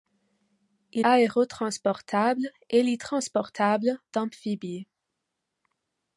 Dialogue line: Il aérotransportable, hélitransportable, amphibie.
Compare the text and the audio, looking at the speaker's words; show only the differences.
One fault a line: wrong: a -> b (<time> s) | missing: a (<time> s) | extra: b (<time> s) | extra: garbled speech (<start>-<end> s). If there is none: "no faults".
no faults